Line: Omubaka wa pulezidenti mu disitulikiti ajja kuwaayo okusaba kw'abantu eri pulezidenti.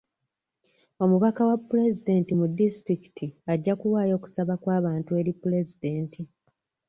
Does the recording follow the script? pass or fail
pass